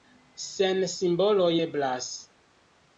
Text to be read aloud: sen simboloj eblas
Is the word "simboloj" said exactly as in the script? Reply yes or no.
yes